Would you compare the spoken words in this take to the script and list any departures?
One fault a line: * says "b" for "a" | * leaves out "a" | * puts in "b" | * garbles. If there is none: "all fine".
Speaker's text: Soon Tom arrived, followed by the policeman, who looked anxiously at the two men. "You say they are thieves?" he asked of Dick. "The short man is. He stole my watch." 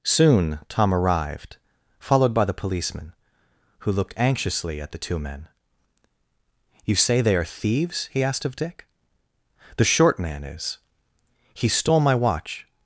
all fine